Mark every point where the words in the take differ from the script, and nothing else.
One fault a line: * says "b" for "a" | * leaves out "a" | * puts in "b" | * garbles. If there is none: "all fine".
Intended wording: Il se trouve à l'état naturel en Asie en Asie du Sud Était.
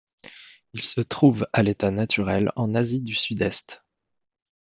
* leaves out "en Asie"
* says "Est" for "Était"